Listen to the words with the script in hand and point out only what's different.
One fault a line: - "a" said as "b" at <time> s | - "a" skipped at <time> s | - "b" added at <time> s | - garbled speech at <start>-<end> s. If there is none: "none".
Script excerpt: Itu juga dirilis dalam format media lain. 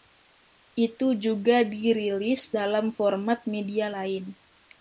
none